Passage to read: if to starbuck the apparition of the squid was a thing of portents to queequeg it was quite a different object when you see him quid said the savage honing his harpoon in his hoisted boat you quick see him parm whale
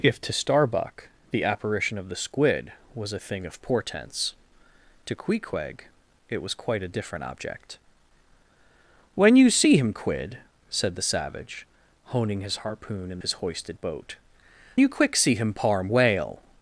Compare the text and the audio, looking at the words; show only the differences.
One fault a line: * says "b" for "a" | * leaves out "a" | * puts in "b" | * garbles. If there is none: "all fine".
all fine